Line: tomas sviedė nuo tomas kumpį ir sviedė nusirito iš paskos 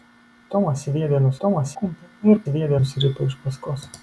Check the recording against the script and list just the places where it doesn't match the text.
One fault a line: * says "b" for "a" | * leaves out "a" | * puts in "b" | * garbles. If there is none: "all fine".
all fine